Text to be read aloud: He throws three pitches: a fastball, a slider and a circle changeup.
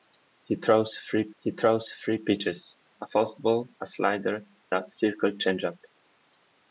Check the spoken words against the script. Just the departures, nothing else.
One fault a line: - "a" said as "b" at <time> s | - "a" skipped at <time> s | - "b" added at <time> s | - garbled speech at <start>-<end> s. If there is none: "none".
- "he throws three" added at 1.4 s
- "and" skipped at 4.4 s